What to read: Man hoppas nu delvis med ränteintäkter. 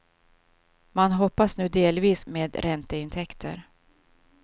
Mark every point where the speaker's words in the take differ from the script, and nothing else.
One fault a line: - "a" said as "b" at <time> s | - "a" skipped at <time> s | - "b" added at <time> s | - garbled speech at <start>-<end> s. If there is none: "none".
none